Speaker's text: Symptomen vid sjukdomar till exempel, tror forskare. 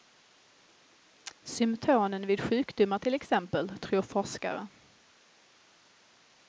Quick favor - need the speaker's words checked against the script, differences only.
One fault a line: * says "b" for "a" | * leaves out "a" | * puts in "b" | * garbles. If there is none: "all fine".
all fine